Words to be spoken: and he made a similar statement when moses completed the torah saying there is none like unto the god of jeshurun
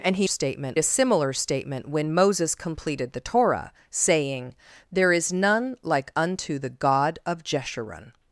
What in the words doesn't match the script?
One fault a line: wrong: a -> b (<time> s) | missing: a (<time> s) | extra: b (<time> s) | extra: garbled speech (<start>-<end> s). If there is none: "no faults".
wrong: made -> statement (0.2 s)